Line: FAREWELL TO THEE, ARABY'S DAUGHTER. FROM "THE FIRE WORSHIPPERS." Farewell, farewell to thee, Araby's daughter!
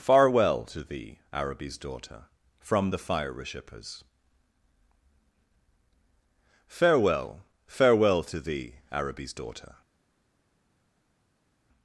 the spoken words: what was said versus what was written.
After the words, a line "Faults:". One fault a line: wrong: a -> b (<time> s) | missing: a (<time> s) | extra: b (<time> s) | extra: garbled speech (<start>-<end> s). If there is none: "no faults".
FAREWELL TO THEE, ARABY'S DAUGHTER. FROM "THE FIRE WORSHIPPERS." Farewell, farewell to thee, Araby's daughter!
Faults:
no faults